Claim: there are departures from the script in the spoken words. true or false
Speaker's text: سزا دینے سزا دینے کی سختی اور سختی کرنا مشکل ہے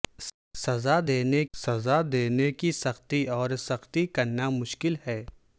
false